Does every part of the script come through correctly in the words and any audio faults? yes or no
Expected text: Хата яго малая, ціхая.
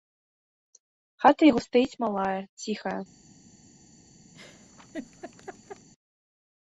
no